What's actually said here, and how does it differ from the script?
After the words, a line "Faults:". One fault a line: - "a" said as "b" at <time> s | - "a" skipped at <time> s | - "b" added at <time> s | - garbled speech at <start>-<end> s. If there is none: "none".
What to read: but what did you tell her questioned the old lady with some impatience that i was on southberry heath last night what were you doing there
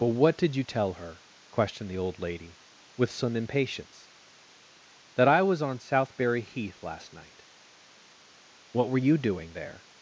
but what did you tell her questioned the old lady with some impatience that i was on southberry heath last night what were you doing there
Faults:
none